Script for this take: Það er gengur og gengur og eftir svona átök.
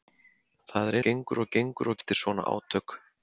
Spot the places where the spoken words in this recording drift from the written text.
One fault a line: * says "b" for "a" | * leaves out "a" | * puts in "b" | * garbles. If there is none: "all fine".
all fine